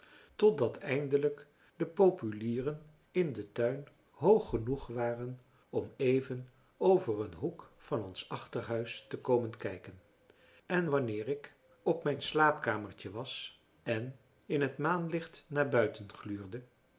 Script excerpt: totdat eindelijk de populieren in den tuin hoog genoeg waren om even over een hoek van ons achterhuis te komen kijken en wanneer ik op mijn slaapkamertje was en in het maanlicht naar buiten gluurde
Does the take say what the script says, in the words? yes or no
yes